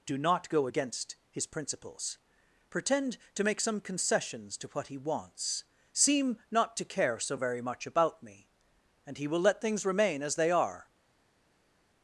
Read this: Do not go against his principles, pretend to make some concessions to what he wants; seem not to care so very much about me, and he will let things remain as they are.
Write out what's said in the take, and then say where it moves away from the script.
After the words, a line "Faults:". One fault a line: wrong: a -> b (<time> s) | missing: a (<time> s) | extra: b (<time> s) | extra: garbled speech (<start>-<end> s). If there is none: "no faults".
Do not go against his principles, pretend to make some concessions to what he wants; seem not to care so very much about me, and he will let things remain as they are.
Faults:
no faults